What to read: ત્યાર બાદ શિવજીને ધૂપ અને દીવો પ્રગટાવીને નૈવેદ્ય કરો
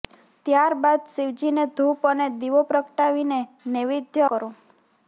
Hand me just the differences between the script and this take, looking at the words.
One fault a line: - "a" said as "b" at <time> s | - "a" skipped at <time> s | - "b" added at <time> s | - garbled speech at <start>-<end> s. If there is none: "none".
none